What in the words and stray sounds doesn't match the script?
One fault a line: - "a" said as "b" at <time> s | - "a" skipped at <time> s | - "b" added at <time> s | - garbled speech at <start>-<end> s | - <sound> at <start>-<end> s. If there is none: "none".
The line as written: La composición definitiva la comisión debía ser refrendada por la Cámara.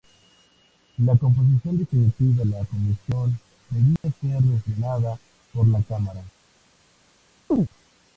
- dropout at 4.0-4.0 s
- chirp at 7.5-7.7 s